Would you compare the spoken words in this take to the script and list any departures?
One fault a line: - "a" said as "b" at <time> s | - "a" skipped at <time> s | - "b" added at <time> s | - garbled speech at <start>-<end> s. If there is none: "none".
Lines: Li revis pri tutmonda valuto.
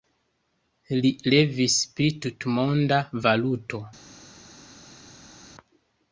none